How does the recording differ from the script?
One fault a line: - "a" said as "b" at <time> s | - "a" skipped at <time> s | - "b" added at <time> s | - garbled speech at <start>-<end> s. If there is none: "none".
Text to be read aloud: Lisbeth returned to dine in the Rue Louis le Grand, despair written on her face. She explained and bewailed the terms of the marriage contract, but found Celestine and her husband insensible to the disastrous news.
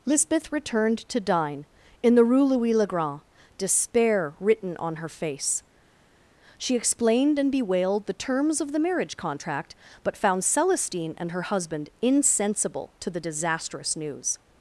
none